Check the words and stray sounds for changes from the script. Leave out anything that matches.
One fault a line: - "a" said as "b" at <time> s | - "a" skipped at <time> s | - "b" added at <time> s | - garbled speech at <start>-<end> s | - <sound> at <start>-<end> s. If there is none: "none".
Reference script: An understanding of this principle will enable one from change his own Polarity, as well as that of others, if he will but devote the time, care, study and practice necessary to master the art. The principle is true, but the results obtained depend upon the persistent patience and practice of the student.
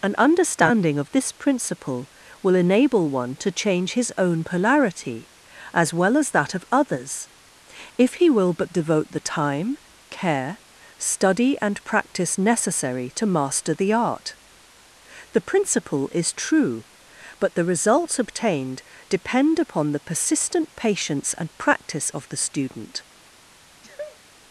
- "from" said as "to" at 3.4 s
- sneeze at 23.8-24.2 s